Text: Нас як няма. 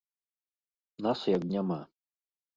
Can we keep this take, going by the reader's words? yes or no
yes